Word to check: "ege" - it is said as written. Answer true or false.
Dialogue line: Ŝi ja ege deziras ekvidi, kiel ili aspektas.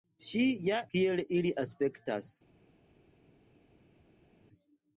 false